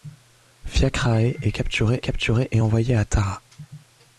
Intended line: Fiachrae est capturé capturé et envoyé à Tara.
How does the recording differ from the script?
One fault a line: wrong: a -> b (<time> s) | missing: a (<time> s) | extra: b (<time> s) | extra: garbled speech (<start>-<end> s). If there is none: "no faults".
no faults